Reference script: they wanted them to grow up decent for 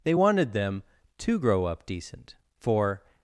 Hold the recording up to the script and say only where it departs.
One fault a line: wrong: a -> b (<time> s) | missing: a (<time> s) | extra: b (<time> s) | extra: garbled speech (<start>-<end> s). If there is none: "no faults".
no faults